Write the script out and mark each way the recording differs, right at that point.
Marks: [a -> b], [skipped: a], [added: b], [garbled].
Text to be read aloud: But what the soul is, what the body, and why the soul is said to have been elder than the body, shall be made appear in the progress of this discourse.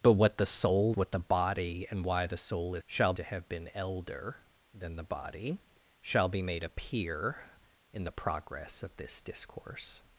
But what the soul [skipped: is,] what the body, and why the soul is [said -> shall] to have been elder than the body, shall be made appear in the progress of this discourse.